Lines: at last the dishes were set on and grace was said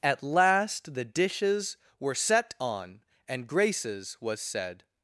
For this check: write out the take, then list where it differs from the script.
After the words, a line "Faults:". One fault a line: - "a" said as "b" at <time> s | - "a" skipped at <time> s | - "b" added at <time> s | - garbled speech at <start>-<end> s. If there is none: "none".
at last the dishes were set on and graces was said
Faults:
- "grace" said as "graces" at 3.5 s